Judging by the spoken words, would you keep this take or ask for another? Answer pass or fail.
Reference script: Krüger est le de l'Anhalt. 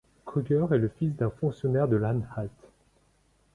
fail